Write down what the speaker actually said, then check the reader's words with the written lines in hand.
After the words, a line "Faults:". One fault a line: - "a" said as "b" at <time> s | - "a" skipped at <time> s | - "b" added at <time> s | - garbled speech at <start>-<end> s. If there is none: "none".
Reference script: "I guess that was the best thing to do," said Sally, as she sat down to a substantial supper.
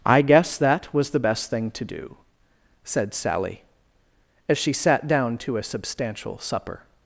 "I guess that was the best thing to do," said Sally, as she sat down to a substantial supper.
Faults:
none